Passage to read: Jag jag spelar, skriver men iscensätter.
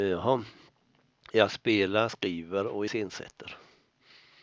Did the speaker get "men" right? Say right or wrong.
wrong